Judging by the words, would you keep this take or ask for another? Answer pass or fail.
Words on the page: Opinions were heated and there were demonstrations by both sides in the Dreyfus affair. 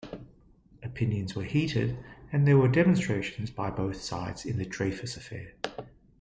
pass